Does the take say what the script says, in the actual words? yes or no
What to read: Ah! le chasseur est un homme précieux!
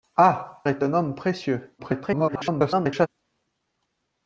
no